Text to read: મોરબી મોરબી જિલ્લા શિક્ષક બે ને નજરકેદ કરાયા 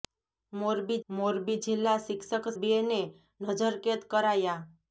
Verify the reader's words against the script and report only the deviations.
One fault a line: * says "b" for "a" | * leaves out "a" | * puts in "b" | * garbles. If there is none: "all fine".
all fine